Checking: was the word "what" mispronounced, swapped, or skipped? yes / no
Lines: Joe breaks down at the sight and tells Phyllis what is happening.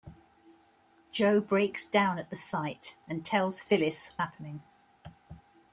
yes